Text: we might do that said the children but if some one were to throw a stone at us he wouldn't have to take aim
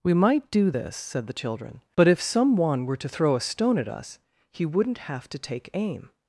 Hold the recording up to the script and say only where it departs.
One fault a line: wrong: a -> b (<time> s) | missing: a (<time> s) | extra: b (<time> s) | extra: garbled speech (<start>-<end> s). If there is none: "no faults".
wrong: that -> this (0.7 s)